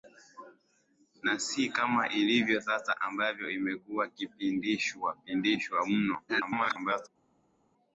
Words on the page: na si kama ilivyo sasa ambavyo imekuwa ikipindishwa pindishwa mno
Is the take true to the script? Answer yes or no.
no